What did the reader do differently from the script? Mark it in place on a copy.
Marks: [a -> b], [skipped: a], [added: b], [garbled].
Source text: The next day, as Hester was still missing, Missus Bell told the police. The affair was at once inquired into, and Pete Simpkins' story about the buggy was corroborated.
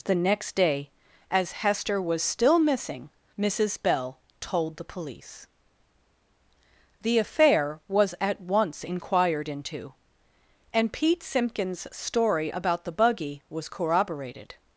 The next day, as Hester was still missing, Missus Bell told the police. The affair was at once inquired into, and Pete Simpkins' story about the buggy was corroborated.